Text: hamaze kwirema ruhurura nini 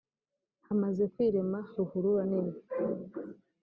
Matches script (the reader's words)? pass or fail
pass